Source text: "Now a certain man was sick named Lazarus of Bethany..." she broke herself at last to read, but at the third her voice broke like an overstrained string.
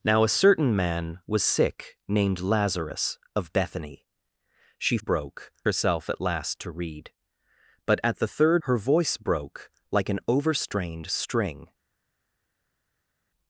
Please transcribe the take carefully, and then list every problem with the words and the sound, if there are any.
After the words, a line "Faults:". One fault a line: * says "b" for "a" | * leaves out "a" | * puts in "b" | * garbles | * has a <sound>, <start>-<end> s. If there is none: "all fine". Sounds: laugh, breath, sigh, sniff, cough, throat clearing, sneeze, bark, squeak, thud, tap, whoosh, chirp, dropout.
"Now a certain man was sick named Lazarus of Bethany..." she broke herself at last to read, but at the third her voice broke like an overstrained string.
Faults:
all fine